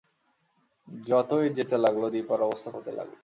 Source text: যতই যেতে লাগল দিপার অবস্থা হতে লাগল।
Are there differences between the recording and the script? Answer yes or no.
no